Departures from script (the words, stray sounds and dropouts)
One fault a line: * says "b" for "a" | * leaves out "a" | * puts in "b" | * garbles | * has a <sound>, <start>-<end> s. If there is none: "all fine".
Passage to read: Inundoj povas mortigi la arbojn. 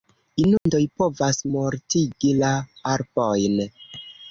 * has a dropout, 0.6-0.7 s